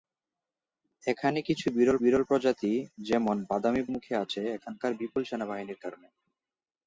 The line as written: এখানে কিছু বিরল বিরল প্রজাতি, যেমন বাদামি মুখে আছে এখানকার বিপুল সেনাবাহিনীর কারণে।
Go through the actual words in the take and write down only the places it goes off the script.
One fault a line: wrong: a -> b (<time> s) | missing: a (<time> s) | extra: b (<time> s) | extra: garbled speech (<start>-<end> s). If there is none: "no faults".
no faults